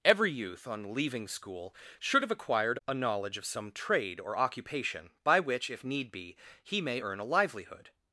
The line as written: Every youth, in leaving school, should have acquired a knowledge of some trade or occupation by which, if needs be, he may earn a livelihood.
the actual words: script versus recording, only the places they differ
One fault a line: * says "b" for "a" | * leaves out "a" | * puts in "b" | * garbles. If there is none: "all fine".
* says "on" for "in"
* says "need" for "needs"